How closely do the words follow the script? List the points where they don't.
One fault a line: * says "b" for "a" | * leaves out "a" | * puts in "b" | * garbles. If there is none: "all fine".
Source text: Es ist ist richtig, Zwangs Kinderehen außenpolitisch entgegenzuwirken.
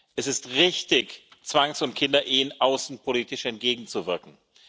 * leaves out "ist"
* puts in "und"